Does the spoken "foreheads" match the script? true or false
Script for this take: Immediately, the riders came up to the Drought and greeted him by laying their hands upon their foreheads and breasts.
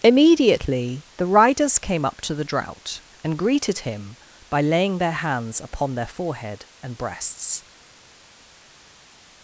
false